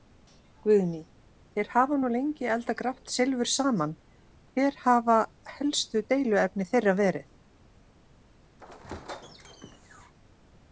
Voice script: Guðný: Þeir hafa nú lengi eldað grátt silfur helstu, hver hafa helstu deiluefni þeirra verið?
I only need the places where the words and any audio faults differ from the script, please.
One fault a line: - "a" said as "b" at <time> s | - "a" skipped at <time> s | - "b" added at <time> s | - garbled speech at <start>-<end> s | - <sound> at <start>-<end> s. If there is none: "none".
- "helstu" said as "saman" at 3.5 s
- squeak at 8.6-10.1 s